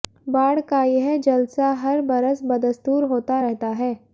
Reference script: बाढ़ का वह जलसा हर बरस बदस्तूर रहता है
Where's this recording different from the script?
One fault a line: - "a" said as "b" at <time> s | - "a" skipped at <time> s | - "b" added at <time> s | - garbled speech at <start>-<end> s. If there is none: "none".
- "वह" said as "यह" at 0.8 s
- "होता" added at 3.0 s